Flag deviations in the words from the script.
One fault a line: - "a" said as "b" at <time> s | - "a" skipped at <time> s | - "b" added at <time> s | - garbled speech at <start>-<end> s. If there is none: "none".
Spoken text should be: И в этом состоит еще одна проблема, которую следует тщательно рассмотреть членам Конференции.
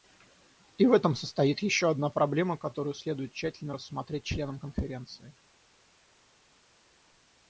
none